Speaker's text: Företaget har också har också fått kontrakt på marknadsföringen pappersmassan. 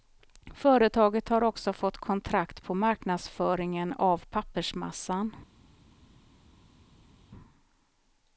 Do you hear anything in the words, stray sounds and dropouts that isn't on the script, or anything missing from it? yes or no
yes